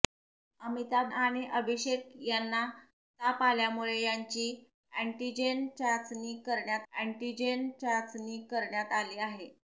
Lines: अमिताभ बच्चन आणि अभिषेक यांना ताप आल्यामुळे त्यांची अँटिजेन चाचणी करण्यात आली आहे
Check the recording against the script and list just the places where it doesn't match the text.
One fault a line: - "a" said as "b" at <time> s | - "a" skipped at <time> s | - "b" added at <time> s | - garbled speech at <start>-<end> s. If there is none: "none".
- "बच्चन" skipped at 1.1 s
- "अँटिजेन चाचणी करण्यात" added at 6.9 s